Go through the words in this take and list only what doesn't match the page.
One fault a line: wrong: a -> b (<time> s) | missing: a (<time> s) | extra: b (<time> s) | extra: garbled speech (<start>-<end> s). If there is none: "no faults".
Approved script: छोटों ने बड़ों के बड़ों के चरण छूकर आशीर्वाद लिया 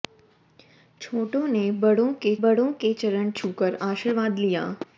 no faults